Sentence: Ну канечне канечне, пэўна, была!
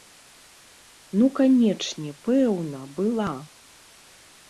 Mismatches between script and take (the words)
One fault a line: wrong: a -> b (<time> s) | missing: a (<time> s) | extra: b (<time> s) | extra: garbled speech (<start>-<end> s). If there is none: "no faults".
missing: канечне (2.1 s)